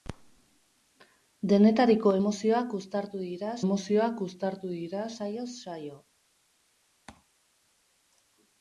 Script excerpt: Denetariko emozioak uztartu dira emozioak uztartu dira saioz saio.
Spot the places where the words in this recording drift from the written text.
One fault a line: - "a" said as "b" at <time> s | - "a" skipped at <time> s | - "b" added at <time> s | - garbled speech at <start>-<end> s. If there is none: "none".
none